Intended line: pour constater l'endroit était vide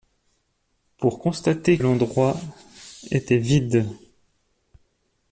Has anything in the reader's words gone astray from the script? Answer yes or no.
no